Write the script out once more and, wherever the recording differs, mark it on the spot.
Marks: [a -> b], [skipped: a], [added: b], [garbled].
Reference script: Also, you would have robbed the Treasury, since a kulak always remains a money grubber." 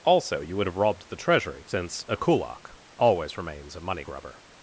Also, you would have robbed the Treasury, since a kulak always remains a money grubber."